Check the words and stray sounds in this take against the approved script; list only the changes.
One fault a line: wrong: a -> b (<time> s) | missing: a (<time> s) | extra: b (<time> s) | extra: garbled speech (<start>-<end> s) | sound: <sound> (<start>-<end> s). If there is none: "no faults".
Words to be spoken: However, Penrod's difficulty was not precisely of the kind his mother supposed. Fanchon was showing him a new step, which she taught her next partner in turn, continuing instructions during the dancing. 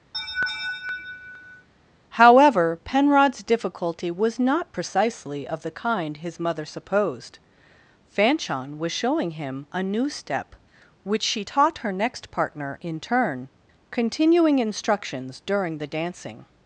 sound: laugh (0.1-1.7 s)